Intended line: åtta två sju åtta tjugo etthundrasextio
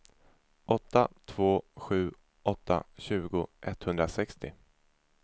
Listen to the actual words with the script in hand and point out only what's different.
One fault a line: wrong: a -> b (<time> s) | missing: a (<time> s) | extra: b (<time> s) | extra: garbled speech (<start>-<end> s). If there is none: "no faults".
no faults